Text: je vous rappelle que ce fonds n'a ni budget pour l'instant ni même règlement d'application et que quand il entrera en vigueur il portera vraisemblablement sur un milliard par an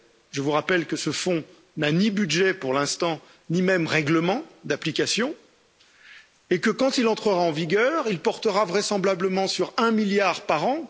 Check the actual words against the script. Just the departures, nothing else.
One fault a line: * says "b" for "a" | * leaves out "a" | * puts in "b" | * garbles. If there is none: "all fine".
all fine